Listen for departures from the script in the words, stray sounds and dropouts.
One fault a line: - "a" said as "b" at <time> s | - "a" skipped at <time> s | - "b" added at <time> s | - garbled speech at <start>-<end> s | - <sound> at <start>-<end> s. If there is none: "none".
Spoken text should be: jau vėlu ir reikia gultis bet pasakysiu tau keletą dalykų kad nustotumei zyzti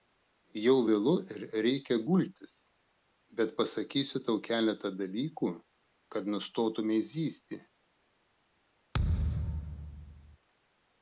- thud at 8.9-10.4 s